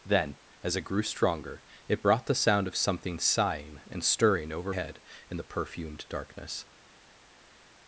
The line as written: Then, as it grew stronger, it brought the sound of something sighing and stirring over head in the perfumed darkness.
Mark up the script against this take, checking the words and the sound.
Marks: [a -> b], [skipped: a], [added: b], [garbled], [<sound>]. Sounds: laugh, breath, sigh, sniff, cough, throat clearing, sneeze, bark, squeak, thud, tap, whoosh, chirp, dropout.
Then, as it grew stronger, it brought the sound of something sighing and stirring over head in the perfumed darkness.